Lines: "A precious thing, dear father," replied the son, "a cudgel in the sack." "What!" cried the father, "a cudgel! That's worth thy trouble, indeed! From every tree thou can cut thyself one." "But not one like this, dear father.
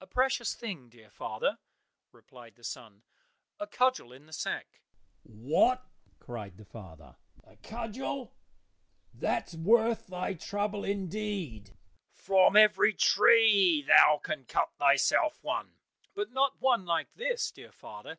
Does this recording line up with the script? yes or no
yes